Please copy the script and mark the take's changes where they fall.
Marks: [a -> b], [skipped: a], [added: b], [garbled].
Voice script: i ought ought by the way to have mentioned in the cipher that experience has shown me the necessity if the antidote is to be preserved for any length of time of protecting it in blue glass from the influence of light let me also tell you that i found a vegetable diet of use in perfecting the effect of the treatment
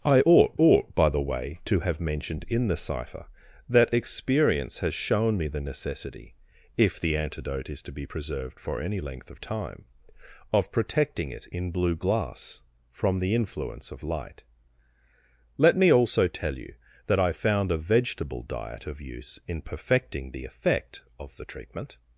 i ought ought by the way to have mentioned in the cipher that experience has shown me the necessity if the antidote is to be preserved for any length of time of protecting it in blue glass from the influence of light let me also tell you that i found a vegetable diet of use in perfecting the effect of the treatment